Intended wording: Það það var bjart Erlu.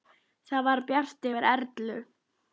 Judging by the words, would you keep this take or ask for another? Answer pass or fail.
fail